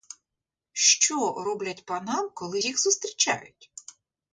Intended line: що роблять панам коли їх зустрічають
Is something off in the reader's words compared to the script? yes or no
no